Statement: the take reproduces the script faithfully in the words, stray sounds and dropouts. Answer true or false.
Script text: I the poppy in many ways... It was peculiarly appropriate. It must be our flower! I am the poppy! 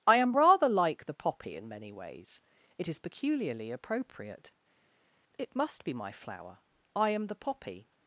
false